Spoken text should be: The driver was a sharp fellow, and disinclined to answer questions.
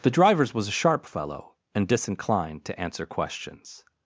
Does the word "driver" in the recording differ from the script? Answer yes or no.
yes